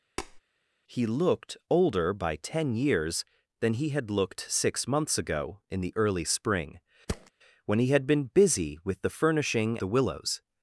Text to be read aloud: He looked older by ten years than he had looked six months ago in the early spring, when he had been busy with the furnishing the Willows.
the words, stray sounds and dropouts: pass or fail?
fail